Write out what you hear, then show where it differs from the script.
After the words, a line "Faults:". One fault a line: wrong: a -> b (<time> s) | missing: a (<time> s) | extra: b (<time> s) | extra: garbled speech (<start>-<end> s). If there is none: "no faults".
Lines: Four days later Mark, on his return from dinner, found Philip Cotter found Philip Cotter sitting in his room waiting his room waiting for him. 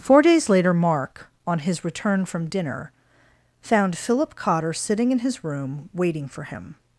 Four days later Mark, on his return from dinner, found Philip Cotter sitting in his room waiting for him.
Faults:
missing: found Philip Cotter (4.7 s)
missing: his room waiting (6.3 s)